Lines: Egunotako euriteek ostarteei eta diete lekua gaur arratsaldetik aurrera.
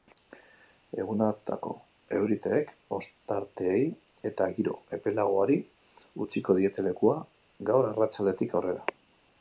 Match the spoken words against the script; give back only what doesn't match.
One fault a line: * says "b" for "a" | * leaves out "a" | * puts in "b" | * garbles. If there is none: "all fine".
* puts in "giro epelagoari utziko"